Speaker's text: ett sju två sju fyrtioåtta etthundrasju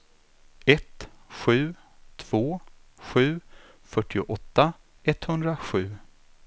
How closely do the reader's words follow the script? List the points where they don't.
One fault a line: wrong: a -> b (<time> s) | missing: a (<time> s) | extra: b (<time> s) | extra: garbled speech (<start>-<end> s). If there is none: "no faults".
no faults